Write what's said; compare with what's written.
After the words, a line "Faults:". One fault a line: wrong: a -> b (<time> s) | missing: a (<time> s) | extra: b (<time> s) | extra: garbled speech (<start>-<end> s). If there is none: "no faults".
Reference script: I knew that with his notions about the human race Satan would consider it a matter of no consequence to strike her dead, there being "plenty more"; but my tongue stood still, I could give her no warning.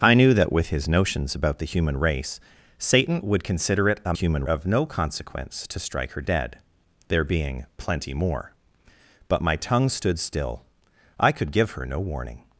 I knew that with his notions about the human race Satan would consider it a human of no consequence to strike her dead, there being "plenty more"; but my tongue stood still, I could give her no warning.
Faults:
wrong: matter -> human (4.1 s)